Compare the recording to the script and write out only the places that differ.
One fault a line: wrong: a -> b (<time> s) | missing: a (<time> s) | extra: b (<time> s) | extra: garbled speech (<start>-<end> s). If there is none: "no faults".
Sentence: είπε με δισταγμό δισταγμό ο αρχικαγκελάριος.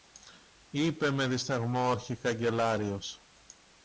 missing: δισταγμό (1.9 s)